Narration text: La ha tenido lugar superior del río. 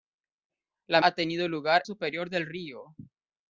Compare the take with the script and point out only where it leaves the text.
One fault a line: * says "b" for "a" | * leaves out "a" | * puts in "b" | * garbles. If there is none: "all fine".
all fine